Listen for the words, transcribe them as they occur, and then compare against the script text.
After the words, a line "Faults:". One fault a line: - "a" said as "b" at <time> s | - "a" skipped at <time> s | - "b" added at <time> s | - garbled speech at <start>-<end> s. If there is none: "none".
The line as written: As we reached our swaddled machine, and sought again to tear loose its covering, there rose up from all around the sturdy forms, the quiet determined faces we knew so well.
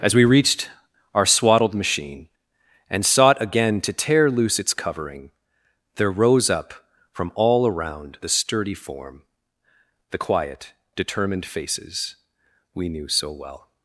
As we reached our swaddled machine, and sought again to tear loose its covering, there rose up from all around the sturdy form, the quiet determined faces we knew so well.
Faults:
- "forms" said as "form" at 8.7 s